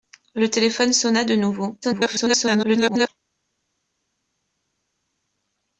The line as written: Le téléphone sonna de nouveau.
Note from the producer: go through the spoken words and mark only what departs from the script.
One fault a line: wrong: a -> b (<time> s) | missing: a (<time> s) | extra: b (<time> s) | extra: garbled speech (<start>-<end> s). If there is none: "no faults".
extra: garbled speech (1.8-3.1 s)